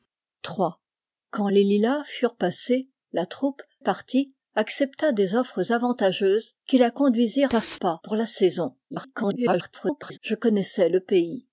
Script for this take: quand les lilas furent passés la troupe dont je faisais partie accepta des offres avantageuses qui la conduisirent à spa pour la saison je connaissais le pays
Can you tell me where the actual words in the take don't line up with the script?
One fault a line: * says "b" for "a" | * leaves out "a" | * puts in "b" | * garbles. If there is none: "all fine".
* leaves out "dont je faisais"
* garbles